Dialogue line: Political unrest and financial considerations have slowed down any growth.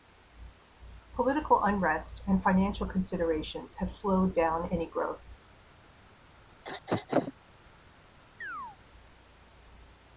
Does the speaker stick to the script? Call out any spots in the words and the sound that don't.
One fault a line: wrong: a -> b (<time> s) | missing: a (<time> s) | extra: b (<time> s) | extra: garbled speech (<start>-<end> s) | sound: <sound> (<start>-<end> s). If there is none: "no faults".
sound: throat clearing (6.6-7.3 s)
sound: chirp (8.4-8.8 s)